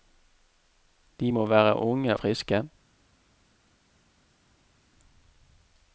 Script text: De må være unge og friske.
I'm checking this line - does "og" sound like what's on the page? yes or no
no